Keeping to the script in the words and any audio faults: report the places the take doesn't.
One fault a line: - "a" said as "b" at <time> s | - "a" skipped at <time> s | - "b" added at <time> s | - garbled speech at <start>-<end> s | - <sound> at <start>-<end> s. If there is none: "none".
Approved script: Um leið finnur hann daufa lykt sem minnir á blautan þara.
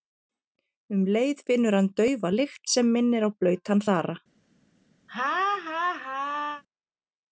- laugh at 5.1-6.6 s